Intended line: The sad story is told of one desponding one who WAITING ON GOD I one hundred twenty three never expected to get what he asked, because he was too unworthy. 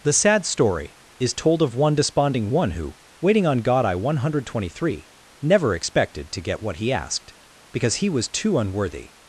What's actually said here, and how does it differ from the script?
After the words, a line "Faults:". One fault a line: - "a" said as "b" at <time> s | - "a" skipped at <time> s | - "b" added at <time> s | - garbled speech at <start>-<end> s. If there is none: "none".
The sad story is told of one desponding one who WAITING ON GOD I one hundred twenty three never expected to get what he asked, because he was too unworthy.
Faults:
none